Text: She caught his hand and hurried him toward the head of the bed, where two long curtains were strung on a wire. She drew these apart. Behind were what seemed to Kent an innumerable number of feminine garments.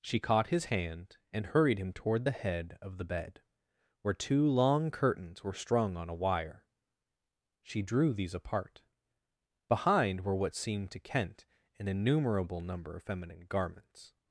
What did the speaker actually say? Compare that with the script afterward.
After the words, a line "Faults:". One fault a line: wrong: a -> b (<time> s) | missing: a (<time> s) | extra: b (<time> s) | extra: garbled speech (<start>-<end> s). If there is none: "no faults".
She caught his hand and hurried him toward the head of the bed, where two long curtains were strung on a wire. She drew these apart. Behind were what seemed to Kent an innumerable number of feminine garments.
Faults:
no faults